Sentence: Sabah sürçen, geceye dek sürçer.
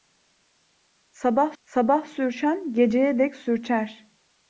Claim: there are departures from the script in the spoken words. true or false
true